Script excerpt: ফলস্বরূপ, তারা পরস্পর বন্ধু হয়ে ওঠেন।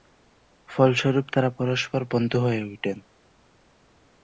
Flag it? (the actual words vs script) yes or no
no